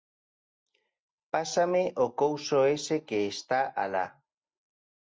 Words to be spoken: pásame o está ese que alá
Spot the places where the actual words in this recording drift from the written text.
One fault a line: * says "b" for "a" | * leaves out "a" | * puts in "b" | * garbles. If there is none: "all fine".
* says "couso" for "está"
* puts in "está"